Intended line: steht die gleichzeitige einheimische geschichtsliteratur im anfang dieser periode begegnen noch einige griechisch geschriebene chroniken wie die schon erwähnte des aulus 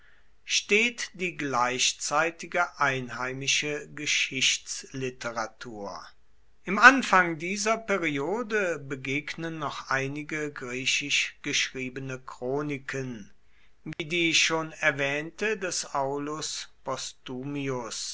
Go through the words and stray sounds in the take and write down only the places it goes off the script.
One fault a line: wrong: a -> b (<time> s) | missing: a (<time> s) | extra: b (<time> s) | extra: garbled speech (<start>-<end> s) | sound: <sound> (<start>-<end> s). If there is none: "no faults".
sound: dropout (13.9-14.0 s)